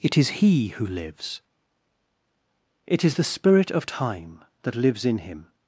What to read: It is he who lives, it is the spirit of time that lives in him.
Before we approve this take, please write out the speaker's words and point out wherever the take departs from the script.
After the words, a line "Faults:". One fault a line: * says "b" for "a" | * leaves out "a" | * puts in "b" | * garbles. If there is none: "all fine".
It is he who lives, it is the spirit of time that lives in him.
Faults:
all fine